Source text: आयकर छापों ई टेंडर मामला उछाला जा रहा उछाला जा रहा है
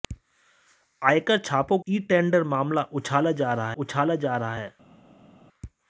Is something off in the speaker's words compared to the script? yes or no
no